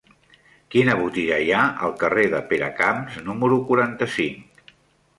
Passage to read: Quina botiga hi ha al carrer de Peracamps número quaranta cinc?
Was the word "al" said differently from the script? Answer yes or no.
no